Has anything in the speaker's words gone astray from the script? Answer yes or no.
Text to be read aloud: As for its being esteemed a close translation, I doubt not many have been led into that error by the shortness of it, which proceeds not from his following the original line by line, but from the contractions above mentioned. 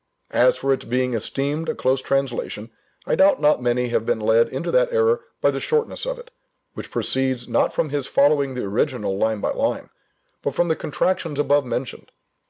no